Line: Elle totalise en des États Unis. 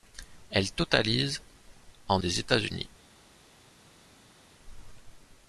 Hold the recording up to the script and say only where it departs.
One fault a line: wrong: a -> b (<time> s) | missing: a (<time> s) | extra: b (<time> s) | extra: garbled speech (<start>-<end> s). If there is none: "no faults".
no faults